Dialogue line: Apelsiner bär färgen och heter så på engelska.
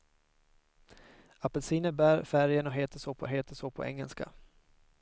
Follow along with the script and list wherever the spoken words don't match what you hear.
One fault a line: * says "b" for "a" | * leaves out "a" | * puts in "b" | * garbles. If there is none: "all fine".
* puts in "heter så på"